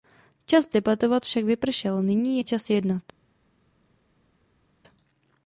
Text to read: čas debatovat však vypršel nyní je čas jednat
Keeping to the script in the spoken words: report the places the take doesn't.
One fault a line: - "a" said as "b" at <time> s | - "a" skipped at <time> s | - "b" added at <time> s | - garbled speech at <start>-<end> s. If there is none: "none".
none